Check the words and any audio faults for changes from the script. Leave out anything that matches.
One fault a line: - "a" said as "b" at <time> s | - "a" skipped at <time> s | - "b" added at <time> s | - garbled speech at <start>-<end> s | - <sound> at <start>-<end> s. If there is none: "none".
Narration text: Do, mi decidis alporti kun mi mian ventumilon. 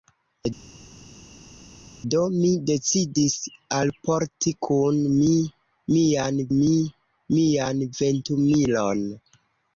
- "mi mian" added at 6.6 s